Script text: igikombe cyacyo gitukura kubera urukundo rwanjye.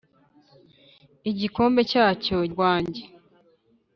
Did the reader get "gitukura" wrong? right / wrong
wrong